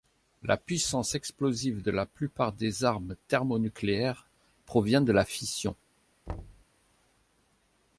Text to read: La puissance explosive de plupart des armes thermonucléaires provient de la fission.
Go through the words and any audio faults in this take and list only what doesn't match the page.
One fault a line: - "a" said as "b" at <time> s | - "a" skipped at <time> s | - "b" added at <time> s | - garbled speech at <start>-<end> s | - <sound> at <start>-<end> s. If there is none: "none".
- "la" added at 1.9 s
- thud at 6.3-6.6 s